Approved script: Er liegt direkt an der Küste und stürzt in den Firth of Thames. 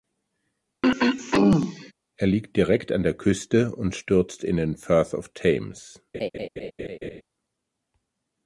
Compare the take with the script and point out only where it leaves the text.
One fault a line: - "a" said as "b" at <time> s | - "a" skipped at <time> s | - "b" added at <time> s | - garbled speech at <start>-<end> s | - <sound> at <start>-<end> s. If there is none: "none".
- throat clearing at 0.8-1.9 s
- laugh at 6.1-7.2 s